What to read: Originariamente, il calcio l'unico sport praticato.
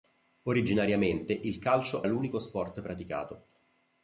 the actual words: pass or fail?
pass